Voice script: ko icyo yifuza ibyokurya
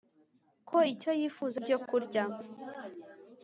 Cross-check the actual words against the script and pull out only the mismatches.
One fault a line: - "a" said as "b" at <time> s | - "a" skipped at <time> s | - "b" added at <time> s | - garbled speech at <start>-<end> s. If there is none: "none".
none